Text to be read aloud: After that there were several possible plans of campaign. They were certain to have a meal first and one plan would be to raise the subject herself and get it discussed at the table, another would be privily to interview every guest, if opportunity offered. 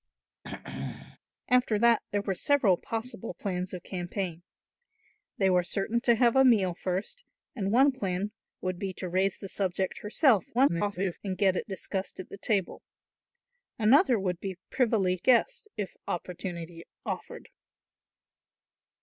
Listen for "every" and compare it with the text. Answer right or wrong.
wrong